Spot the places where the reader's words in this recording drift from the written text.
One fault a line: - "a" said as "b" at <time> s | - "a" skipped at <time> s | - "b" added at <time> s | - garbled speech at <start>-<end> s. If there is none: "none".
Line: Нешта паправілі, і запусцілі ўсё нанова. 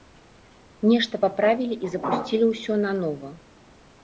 none